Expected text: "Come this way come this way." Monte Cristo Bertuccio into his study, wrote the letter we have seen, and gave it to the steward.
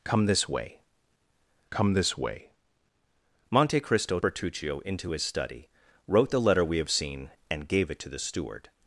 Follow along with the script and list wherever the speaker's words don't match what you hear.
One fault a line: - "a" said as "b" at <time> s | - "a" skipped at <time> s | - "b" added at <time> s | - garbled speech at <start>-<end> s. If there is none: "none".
none